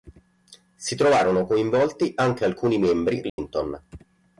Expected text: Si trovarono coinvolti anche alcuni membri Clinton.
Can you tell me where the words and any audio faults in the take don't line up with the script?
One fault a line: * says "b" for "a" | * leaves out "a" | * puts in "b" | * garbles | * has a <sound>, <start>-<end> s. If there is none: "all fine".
* has a dropout, 3.3-3.4 s